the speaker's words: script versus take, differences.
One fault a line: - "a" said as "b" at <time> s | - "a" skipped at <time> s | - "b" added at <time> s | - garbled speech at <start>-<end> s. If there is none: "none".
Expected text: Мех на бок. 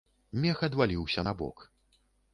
- "адваліўся" added at 0.7 s